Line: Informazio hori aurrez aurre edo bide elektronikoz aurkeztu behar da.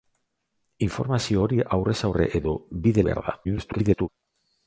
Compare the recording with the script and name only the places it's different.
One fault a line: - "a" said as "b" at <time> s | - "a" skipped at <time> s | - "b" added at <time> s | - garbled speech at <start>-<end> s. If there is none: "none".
- "elektronikoz aurkeztu" skipped at 3.0 s
- garbled speech at 3.4-4.1 s